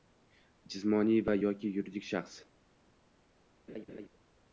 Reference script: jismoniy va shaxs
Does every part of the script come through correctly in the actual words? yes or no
no